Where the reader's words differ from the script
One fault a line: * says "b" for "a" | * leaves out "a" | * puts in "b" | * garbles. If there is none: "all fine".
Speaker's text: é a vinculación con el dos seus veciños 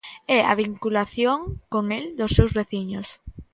all fine